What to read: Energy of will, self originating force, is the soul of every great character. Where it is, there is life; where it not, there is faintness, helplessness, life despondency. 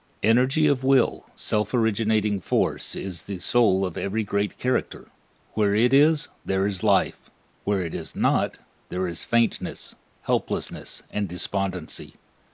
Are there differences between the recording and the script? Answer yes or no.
yes